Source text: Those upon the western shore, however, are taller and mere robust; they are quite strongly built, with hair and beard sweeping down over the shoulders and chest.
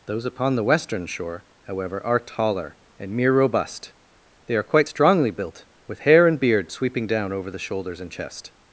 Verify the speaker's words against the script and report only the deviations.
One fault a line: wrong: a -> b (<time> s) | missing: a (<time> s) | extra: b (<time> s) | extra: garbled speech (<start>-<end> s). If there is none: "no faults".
no faults